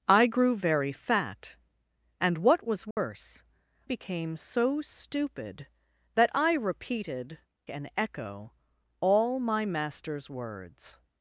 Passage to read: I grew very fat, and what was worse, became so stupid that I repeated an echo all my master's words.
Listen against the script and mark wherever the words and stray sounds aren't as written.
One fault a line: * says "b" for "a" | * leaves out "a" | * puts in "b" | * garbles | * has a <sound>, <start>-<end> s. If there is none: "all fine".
* has a dropout, 2.9-3.0 s